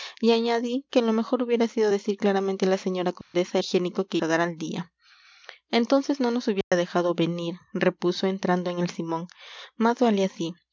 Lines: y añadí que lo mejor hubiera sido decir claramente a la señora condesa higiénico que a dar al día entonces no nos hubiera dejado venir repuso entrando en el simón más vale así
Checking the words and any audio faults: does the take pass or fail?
fail